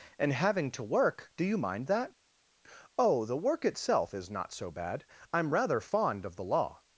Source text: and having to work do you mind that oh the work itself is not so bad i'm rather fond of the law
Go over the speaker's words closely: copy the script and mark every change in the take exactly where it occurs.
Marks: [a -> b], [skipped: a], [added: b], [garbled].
and having to work do you mind that oh the work itself is not so bad i'm rather fond of the law